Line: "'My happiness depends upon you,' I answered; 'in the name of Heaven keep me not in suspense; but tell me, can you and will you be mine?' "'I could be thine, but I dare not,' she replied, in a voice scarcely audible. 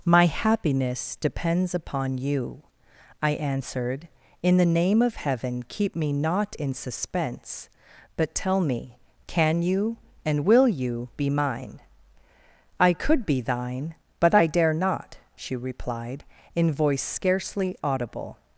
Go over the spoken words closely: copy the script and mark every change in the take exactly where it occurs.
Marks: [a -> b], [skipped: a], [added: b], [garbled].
"'My happiness depends upon you,' I answered; 'in the name of Heaven keep me not in suspense; but tell me, can you and will you be mine?' "'I could be thine, but I dare not,' she replied, in [skipped: a] voice scarcely audible.